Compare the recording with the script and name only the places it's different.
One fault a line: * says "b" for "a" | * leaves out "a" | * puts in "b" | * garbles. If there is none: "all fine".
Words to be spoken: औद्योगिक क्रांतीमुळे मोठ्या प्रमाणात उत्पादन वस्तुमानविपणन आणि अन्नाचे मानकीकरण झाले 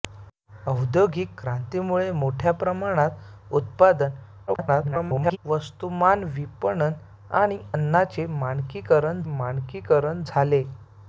* garbles
* puts in "मानकीकरण"